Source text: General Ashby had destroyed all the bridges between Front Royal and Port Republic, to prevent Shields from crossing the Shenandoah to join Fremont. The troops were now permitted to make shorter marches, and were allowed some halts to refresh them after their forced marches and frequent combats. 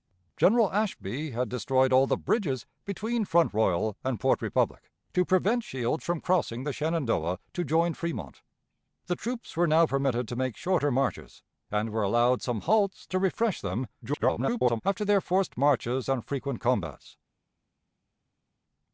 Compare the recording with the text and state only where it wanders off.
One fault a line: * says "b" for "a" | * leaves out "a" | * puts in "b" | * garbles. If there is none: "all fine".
* garbles